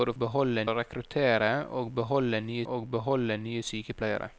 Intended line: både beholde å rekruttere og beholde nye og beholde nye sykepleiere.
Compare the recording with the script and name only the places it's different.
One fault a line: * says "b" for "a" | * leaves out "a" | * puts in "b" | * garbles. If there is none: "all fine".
all fine